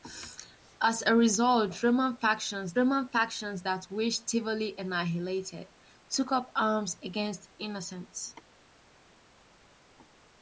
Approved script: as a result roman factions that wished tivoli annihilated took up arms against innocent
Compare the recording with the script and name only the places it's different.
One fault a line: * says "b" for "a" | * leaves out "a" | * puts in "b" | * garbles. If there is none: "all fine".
* puts in "roman factions"